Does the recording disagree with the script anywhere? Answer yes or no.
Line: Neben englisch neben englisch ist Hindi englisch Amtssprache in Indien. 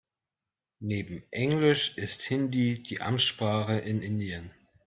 yes